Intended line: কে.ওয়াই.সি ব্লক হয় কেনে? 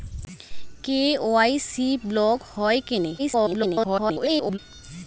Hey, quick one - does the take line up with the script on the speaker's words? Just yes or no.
no